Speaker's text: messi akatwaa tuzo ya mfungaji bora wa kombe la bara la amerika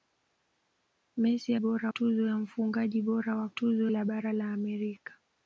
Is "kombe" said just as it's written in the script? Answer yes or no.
no